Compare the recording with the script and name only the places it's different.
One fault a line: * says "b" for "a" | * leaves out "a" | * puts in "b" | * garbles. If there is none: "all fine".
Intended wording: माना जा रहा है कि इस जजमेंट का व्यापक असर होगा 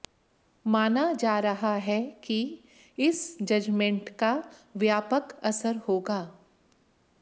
all fine